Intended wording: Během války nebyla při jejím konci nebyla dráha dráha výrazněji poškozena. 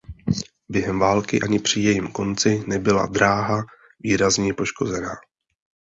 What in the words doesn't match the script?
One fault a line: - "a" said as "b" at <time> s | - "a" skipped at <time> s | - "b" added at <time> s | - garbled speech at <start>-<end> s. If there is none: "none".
- "nebyla" said as "ani" at 1.4 s
- "dráha" skipped at 3.6 s